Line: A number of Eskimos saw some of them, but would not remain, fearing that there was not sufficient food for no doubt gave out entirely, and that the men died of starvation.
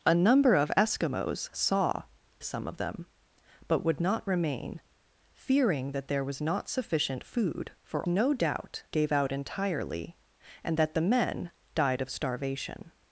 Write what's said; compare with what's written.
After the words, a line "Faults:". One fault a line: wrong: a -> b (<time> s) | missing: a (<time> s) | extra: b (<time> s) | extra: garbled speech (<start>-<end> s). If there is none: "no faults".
A number of Eskimos saw some of them, but would not remain, fearing that there was not sufficient food for no doubt gave out entirely, and that the men died of starvation.
Faults:
no faults